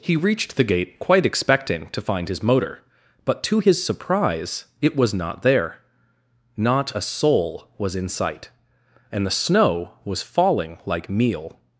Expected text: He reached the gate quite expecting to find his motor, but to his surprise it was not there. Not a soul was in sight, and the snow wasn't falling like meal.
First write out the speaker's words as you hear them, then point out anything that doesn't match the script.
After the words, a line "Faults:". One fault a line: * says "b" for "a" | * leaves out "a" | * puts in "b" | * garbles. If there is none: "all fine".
He reached the gate quite expecting to find his motor, but to his surprise it was not there. Not a soul was in sight, and the snow was falling like meal.
Faults:
* says "was" for "wasn't"